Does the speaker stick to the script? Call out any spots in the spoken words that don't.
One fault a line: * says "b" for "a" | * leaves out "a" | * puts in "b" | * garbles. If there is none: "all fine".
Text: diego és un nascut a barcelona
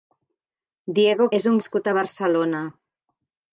all fine